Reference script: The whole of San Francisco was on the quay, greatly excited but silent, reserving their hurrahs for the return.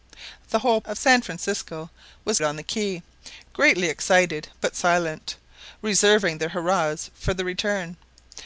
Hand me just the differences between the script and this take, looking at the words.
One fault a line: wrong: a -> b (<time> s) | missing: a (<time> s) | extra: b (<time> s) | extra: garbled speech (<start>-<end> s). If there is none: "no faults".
no faults